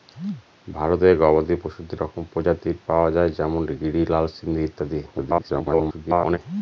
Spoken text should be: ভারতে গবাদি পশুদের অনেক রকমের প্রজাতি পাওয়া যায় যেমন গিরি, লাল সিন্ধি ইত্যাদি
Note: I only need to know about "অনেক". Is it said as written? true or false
false